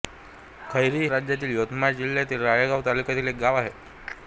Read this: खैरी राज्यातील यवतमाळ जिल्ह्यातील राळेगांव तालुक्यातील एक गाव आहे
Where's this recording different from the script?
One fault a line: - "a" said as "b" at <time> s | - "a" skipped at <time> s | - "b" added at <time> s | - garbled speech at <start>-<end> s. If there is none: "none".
none